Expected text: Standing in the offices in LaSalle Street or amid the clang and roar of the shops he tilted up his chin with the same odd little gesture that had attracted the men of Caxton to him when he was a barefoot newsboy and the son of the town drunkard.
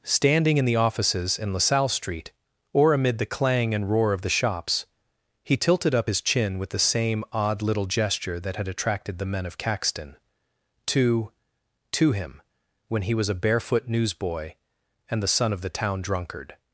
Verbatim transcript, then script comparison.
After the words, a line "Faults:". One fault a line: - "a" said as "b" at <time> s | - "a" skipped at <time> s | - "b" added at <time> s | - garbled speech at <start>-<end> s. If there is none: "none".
Standing in the offices in LaSalle Street or amid the clang and roar of the shops he tilted up his chin with the same odd little gesture that had attracted the men of Caxton to to him when he was a barefoot newsboy and the son of the town drunkard.
Faults:
- "to" added at 11.9 s